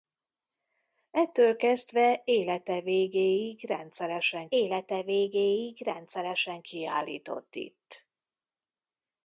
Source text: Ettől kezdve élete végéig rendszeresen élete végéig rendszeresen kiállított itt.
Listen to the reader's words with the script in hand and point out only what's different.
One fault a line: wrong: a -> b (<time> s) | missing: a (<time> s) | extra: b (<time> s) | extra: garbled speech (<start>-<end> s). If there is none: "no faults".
no faults